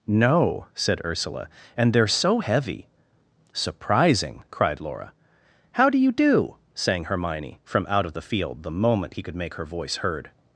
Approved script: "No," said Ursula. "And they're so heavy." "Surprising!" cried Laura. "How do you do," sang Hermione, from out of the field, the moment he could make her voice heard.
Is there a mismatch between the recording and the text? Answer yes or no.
no